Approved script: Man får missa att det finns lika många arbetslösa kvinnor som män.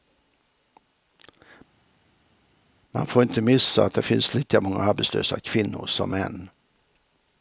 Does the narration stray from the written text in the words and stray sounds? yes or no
yes